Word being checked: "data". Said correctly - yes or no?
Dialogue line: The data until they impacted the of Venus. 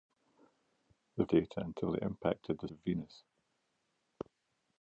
yes